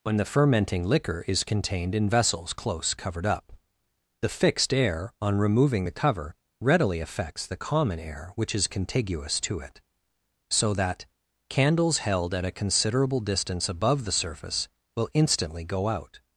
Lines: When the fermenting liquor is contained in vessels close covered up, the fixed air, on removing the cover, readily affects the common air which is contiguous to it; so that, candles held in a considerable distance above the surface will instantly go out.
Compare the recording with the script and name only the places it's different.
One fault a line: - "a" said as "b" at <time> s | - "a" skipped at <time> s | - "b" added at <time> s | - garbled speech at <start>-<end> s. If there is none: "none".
- "in" said as "at" at 12.3 s